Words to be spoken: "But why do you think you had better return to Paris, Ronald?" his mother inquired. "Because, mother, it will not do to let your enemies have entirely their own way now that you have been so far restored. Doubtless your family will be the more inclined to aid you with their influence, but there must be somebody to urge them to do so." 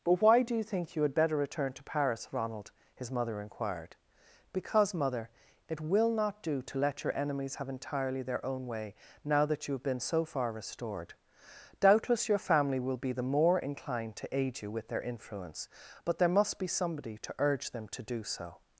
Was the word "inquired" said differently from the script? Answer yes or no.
no